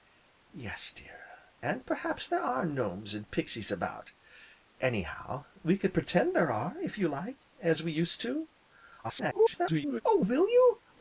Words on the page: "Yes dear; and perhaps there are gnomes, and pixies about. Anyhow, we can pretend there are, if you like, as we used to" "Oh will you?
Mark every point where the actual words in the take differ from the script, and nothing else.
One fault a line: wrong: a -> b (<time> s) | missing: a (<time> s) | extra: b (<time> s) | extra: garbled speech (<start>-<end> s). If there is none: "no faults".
extra: garbled speech (9.0-10.0 s)